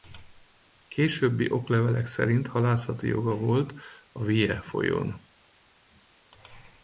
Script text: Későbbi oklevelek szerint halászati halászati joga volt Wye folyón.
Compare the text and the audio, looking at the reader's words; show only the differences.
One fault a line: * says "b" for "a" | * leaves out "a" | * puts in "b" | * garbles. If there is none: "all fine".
* leaves out "halászati"
* puts in "a"